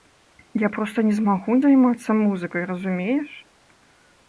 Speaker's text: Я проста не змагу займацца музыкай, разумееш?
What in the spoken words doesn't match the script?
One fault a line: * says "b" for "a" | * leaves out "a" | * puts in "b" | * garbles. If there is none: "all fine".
all fine